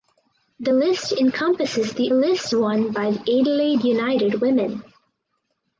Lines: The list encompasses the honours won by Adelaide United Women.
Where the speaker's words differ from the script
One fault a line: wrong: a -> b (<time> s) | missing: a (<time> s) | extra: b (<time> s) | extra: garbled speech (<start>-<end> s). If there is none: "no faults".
wrong: honours -> list (2.1 s)